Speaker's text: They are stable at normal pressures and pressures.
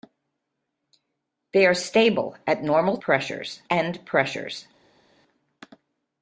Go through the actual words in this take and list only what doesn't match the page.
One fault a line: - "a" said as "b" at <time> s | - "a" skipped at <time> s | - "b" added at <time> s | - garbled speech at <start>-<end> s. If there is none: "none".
none